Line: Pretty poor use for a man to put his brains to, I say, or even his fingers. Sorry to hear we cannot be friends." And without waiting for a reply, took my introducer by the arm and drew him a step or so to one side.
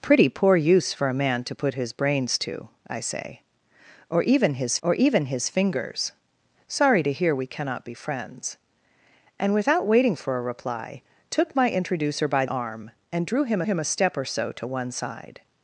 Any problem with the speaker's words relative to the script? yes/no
yes